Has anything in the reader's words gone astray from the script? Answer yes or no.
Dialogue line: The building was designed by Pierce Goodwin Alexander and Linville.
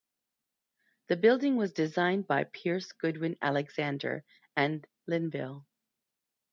no